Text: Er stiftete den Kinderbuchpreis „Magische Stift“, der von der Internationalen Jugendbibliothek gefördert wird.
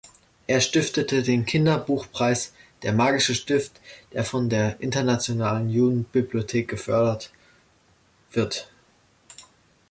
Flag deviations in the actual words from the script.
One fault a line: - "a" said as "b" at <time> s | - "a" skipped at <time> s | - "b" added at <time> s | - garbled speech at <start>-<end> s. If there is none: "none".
- "Der" added at 2.8 s